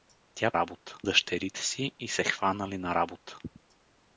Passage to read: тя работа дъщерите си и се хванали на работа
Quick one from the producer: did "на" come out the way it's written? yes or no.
yes